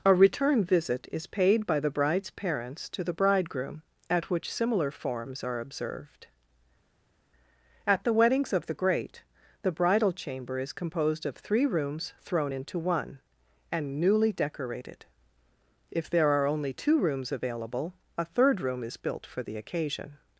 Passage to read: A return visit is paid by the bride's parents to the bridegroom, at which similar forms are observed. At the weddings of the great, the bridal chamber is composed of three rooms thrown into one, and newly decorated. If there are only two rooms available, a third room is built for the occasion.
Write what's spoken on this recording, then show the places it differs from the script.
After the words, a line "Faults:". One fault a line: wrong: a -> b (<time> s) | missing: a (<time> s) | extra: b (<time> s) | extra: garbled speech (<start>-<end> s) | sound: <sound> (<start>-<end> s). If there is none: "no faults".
A return visit is paid by the bride's parents to the bridegroom, at which similar forms are observed. At the weddings of the great, the bridal chamber is composed of three rooms thrown into one, and newly decorated. If there are only two rooms available, a third room is built for the occasion.
Faults:
no faults